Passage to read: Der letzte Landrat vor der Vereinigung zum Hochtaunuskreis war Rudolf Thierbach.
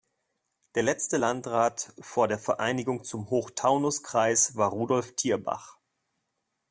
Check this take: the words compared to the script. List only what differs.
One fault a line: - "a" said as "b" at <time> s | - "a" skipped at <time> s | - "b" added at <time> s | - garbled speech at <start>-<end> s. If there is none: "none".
none